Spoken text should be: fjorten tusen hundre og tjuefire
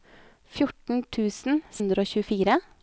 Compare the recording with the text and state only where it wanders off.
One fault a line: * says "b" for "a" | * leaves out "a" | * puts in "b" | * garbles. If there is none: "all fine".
all fine